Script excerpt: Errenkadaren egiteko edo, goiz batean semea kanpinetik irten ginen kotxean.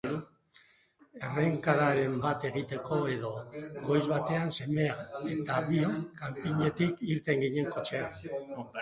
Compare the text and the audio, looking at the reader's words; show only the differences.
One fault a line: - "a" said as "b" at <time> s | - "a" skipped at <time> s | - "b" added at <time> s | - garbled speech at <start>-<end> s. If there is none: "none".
- "bat" added at 2.2 s
- "eta biok" added at 5.3 s